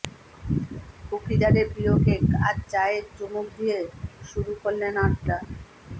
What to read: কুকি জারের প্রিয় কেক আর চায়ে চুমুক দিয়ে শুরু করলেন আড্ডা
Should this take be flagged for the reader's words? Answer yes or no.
no